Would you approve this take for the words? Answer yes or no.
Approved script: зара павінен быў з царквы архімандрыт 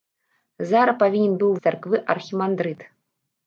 yes